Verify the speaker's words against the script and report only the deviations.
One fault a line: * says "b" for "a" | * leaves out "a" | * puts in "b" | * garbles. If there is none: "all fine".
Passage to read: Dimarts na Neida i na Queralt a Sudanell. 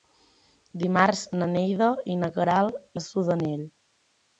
all fine